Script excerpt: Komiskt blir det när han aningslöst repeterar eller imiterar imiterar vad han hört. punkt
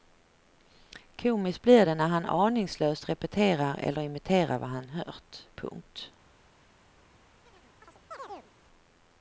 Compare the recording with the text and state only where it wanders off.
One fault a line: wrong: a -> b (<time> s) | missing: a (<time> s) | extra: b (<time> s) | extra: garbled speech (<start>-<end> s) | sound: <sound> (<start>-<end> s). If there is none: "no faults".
missing: imiterar (4.6 s)
sound: chirp (7.5-8.5 s)